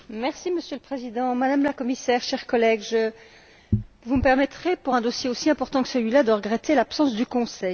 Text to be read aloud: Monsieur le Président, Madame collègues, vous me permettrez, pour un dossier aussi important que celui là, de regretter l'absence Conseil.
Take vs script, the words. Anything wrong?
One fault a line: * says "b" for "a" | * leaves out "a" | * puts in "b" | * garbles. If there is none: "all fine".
* puts in "la Commissaire chers"
* puts in "du"